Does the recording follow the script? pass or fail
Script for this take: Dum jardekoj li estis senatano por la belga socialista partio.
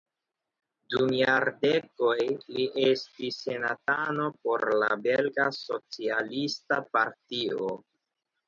pass